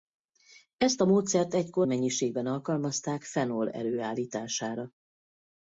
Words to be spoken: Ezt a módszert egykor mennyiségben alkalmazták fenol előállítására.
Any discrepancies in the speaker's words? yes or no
no